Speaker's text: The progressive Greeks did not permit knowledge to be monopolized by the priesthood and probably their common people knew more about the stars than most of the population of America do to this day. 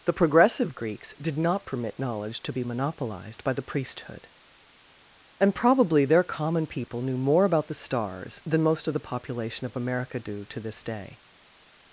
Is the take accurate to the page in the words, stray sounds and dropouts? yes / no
yes